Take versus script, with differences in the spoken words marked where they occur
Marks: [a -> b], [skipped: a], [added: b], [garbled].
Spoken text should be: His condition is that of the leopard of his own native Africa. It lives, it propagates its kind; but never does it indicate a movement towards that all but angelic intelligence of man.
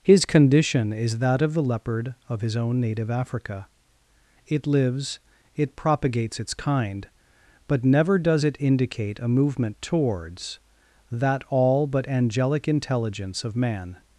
His condition is that of the leopard of his own native Africa. It lives, it propagates its kind; but never does it indicate a movement towards that all but angelic intelligence of man.